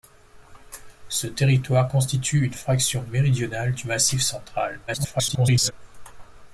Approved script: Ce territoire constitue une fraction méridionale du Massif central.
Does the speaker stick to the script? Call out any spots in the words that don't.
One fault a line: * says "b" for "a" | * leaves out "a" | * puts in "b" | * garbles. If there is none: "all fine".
* garbles